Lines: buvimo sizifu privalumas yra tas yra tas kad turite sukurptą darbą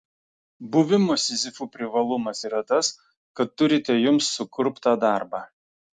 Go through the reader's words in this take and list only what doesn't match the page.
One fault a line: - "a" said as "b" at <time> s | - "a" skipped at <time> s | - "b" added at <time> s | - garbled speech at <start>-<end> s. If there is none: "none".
- "yra tas" skipped at 2.9 s
- "jums" added at 4.1 s